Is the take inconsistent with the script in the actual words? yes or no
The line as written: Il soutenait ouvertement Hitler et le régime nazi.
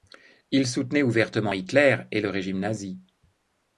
no